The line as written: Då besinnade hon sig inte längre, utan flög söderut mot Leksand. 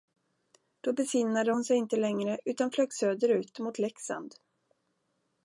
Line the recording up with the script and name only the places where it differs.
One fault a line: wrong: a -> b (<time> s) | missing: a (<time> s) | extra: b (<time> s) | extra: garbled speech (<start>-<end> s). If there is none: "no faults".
no faults